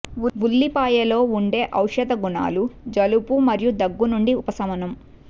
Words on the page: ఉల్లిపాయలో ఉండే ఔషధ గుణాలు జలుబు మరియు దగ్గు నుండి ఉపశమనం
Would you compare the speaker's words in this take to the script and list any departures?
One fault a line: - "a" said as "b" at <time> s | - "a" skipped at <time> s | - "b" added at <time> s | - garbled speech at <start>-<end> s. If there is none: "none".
none